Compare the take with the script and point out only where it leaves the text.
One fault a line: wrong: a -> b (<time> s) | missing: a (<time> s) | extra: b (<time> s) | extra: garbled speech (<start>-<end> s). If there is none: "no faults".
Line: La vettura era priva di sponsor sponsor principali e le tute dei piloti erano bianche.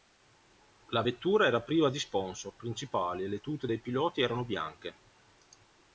missing: sponsor (2.5 s)